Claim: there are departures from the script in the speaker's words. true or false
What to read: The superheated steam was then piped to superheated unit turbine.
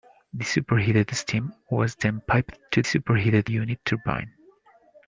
false